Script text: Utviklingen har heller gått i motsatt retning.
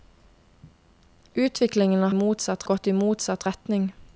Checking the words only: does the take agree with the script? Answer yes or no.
no